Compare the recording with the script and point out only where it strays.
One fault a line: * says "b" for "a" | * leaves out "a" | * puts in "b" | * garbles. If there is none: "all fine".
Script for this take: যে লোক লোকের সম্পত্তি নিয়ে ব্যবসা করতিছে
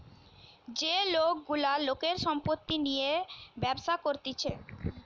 * puts in "গুলা"